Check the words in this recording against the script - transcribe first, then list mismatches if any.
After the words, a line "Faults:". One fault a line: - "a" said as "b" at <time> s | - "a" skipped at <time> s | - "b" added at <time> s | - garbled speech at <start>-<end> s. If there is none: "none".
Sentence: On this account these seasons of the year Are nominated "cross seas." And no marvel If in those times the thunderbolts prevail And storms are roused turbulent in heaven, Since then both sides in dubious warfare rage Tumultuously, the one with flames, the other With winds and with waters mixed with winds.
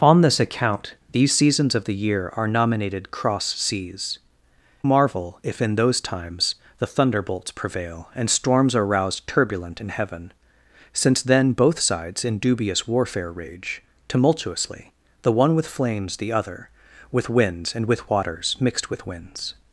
On this account these seasons of the year Are nominated "cross seas." Marvel If in those times the thunderbolts prevail And storms are roused turbulent in heaven, Since then both sides in dubious warfare rage Tumultuously, the one with flames, the other With winds and with waters mixed with winds.
Faults:
- "And no" skipped at 4.2 s